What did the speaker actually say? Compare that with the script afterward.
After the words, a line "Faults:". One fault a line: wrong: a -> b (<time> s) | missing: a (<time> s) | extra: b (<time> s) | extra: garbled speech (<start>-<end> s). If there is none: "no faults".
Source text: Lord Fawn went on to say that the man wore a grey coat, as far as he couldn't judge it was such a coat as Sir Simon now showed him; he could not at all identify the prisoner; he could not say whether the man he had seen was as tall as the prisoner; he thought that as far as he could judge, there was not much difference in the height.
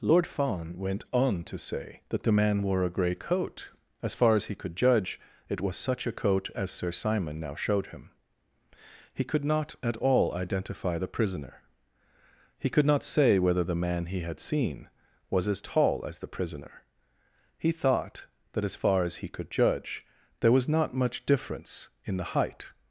Lord Fawn went on to say that the man wore a grey coat, as far as he could judge it was such a coat as Sir Simon now showed him; he could not at all identify the prisoner; he could not say whether the man he had seen was as tall as the prisoner; he thought that as far as he could judge, there was not much difference in the height.
Faults:
wrong: couldn't -> could (4.5 s)